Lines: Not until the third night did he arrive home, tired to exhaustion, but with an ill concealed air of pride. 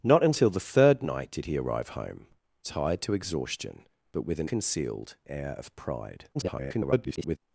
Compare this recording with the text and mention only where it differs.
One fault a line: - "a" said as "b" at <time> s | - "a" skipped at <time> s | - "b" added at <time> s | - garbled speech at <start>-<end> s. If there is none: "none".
- "ill" skipped at 4.5 s
- garbled speech at 6.3-7.4 s